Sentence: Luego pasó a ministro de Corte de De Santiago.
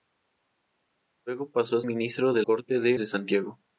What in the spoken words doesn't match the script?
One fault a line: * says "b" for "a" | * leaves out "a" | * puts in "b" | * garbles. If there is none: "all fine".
all fine